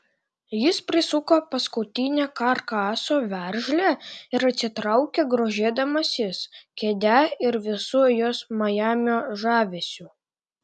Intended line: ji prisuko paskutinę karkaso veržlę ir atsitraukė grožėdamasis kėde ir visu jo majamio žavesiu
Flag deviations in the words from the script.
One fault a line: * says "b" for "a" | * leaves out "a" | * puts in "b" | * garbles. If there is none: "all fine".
* says "jis" for "ji"
* says "jos" for "jo"